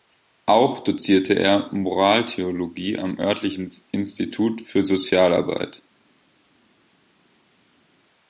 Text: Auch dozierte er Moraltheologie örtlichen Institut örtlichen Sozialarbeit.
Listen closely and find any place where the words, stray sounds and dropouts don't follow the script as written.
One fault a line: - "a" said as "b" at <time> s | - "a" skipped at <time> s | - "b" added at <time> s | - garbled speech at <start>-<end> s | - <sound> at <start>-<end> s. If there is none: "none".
- "am" added at 3.0 s
- "örtlichen" said as "für" at 4.6 s